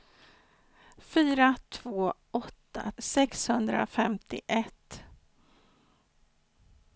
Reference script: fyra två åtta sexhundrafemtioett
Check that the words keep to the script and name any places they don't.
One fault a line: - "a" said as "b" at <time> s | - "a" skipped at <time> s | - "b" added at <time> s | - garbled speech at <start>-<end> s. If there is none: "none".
none